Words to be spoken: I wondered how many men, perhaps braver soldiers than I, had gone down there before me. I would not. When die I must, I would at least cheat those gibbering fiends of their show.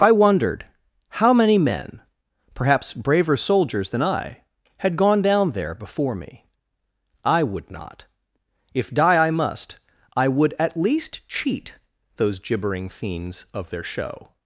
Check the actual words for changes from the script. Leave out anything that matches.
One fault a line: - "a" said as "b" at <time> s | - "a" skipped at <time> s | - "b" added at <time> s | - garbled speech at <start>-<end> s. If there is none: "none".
- "When" said as "If" at 8.7 s